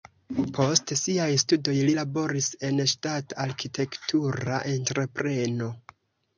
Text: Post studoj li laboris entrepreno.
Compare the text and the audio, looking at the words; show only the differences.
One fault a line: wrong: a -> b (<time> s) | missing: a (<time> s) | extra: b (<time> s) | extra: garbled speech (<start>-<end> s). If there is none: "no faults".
extra: siaj (1.0 s)
extra: en ŝtata arkitektura (2.7 s)